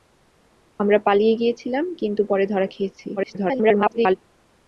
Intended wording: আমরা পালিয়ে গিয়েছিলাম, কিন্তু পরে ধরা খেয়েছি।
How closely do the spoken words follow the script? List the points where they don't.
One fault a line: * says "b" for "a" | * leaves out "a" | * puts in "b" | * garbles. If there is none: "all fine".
* garbles